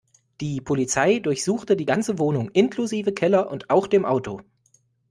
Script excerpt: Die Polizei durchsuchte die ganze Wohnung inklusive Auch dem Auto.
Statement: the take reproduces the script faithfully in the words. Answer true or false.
false